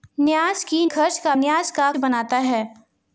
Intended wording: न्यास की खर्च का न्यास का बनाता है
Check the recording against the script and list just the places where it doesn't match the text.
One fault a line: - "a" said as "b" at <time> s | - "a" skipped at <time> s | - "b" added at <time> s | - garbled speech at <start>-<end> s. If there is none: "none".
none